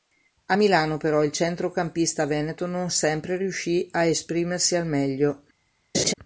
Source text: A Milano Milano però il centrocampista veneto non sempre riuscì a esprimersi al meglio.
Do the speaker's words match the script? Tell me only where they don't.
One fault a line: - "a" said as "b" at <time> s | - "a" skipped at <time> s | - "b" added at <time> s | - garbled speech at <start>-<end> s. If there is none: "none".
- "Milano" skipped at 0.9 s